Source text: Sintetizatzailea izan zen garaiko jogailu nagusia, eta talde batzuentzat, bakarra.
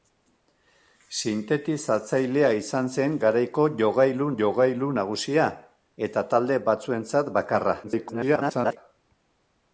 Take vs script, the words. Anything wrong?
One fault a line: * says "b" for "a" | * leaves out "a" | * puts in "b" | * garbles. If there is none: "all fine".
* puts in "jogailu"
* garbles